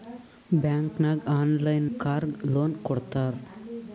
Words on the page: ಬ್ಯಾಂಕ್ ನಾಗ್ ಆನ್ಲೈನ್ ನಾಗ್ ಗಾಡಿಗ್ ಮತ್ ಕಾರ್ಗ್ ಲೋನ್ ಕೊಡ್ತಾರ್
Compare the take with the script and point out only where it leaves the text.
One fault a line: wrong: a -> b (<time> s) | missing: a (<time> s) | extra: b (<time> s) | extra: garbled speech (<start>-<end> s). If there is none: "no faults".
missing: ನಾಗ್ ಗಾಡಿಗ್ ಮತ್ (1.9 s)